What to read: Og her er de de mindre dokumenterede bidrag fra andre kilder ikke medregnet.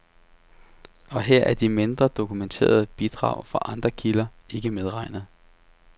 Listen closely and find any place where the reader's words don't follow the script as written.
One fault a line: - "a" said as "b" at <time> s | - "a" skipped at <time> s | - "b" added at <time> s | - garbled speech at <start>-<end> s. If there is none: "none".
- "de" skipped at 1.7 s